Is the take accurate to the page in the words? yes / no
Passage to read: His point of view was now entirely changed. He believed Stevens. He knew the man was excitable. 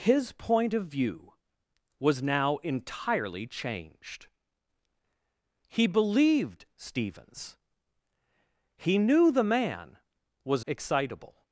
yes